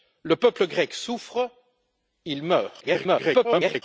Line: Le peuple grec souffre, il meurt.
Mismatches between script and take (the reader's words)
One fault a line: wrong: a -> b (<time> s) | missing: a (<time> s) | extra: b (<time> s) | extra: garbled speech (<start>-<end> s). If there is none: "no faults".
extra: garbled speech (2.8-3.8 s)